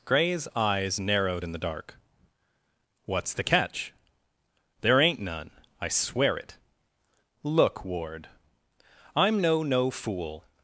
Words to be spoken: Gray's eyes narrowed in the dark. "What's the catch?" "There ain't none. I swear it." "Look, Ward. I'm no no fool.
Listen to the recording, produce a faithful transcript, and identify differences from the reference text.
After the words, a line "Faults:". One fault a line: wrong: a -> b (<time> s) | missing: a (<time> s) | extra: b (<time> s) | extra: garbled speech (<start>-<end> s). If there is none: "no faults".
Gray's eyes narrowed in the dark. "What's the catch?" "There ain't none. I swear it." "Look, Ward. I'm no no fool.
Faults:
no faults